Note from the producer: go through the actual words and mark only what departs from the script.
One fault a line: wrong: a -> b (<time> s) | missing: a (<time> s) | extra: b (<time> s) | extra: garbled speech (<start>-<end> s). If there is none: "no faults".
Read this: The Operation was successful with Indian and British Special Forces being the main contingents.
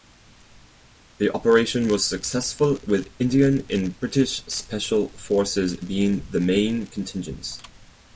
no faults